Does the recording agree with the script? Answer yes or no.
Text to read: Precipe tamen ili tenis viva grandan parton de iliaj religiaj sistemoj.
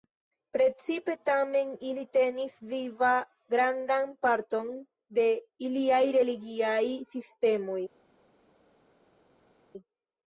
yes